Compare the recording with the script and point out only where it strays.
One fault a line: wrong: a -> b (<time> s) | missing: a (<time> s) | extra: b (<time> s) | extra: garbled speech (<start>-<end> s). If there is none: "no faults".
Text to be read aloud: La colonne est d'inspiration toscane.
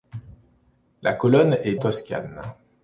missing: d'inspiration (1.8 s)